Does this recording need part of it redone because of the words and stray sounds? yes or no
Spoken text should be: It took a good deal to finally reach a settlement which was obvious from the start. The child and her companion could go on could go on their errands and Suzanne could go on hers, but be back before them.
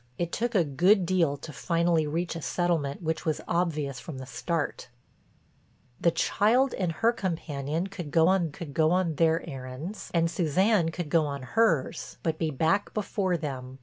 no